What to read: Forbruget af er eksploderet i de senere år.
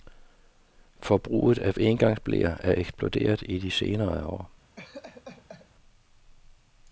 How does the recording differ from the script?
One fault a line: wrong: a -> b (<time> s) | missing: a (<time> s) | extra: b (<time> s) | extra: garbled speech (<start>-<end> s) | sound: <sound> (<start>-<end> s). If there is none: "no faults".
extra: engangsbleer (1.8 s)
sound: laugh (4.8-5.7 s)